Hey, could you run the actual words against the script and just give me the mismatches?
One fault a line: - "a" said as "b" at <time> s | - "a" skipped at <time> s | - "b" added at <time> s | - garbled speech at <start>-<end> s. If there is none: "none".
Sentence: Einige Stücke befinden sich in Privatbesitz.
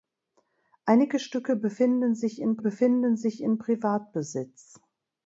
- "befinden sich in" added at 2.6 s